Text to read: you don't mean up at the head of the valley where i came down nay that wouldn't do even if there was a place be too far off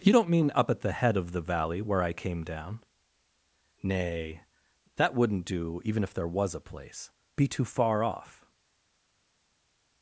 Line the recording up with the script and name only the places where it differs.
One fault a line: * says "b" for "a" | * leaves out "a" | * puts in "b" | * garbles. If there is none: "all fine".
all fine